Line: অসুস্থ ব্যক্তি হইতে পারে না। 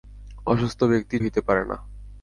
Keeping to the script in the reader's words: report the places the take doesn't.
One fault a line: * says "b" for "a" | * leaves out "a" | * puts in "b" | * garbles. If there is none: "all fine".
all fine